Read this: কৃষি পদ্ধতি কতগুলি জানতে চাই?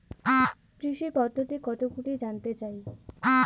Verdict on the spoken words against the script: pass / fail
pass